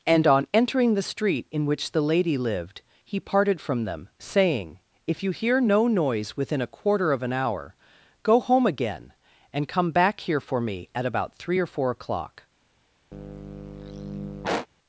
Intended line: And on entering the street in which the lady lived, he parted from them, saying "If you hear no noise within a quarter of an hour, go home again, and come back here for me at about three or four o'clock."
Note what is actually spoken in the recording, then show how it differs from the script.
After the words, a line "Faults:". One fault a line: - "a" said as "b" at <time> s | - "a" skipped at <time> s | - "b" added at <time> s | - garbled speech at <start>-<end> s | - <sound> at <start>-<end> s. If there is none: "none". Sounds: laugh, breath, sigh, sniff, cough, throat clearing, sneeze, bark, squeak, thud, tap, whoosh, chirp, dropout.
And on entering the street in which the lady lived, he parted from them, saying "If you hear no noise within a quarter of an hour, go home again, and come back here for me at about three or four o'clock."
Faults:
- sigh at 13.1-14.7 s